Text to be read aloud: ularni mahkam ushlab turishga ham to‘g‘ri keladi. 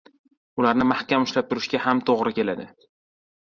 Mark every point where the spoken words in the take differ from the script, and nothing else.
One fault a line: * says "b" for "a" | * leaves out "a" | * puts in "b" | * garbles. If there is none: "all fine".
all fine